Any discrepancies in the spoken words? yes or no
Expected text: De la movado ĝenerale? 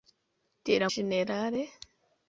yes